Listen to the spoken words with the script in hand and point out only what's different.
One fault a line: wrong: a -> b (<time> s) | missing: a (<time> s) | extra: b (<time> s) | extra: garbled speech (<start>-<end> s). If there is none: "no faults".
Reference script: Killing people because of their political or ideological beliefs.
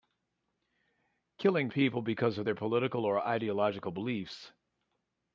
no faults